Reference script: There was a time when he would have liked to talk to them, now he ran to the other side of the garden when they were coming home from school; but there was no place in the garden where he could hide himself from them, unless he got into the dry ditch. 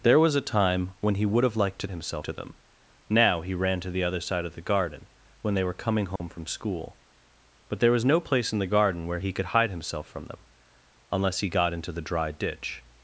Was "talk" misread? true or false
true